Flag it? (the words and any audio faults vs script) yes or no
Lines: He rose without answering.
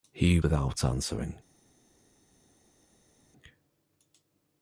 yes